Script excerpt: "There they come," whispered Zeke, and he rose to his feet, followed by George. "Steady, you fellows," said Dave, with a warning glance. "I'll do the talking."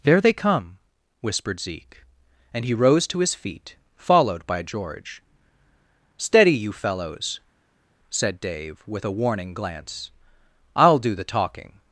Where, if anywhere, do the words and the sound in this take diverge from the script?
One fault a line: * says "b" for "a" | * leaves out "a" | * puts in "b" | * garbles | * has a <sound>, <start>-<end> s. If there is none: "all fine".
all fine